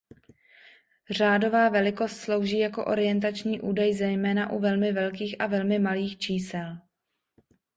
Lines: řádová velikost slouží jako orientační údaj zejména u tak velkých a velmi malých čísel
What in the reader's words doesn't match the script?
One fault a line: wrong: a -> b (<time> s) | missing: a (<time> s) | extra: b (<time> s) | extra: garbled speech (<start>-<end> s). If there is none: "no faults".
wrong: tak -> velmi (4.6 s)